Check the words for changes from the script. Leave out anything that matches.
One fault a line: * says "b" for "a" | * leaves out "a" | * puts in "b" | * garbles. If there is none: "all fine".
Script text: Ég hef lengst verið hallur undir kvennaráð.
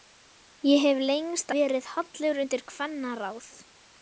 all fine